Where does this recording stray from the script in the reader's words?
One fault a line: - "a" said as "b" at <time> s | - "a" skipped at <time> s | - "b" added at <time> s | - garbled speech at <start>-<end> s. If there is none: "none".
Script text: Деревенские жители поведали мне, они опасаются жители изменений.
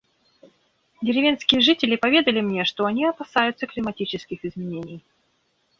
- "что" added at 2.6 s
- "жители" said as "климатических" at 3.7 s